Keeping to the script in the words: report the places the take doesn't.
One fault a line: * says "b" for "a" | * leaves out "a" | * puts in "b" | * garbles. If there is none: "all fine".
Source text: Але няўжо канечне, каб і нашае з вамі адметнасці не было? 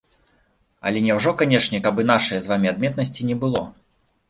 all fine